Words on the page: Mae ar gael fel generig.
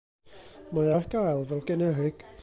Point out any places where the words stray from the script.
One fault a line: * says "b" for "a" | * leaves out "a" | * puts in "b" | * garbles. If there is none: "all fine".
all fine